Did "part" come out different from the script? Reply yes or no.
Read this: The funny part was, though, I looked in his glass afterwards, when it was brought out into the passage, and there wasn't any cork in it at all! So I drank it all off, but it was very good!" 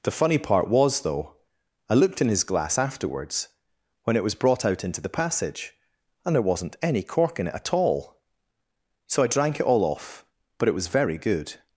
no